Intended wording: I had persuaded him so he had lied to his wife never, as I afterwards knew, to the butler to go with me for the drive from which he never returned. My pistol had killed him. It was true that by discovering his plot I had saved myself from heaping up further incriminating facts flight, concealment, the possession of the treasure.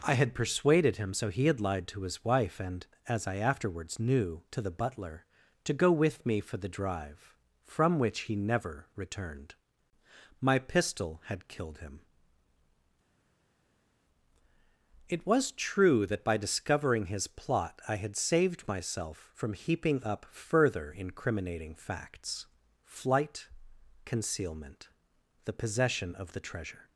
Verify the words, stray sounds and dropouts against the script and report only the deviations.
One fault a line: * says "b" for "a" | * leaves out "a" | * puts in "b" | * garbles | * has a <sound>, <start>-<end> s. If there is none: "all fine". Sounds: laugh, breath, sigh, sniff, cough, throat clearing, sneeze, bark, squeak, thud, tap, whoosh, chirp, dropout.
* says "and" for "never"